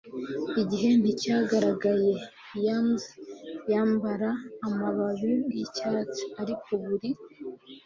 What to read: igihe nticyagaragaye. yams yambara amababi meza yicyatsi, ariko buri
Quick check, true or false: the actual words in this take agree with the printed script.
false